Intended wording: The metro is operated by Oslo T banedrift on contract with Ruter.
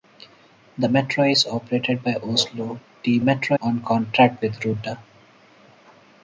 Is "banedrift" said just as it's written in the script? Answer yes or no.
no